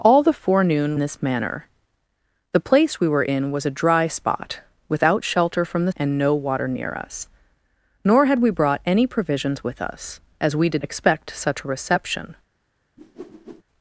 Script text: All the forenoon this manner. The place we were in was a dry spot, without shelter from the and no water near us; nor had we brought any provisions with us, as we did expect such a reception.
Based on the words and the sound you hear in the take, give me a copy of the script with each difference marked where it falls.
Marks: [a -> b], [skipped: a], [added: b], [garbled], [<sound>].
All the forenoon this manner. The place we were in was a dry spot, without shelter from the and no water near us; nor had we brought any provisions with us, as we did expect such a reception. [whoosh]